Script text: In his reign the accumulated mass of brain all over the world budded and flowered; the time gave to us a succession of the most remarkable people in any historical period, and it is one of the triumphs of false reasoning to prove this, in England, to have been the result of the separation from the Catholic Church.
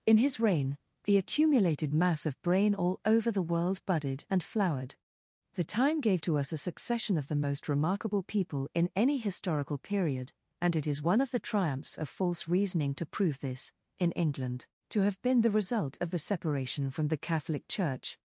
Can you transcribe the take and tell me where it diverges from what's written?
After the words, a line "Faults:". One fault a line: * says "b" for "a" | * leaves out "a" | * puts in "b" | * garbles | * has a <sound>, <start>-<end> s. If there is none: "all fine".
In his reign the accumulated mass of brain all over the world budded and flowered; the time gave to us a succession of the most remarkable people in any historical period, and it is one of the triumphs of false reasoning to prove this, in England, to have been the result of the separation from the Catholic Church.
Faults:
all fine